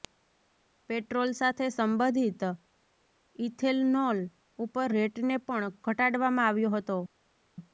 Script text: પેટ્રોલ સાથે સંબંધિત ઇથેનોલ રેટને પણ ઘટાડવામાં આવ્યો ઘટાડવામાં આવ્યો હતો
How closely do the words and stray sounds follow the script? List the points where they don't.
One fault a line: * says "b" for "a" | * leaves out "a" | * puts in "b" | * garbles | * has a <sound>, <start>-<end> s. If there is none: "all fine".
* puts in "ઉપર"
* leaves out "ઘટાડવામાં આવ્યો"